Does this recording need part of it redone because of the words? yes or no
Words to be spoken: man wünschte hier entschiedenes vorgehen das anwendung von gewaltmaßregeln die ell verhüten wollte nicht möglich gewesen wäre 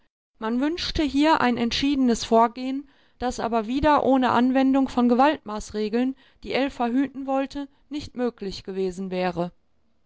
yes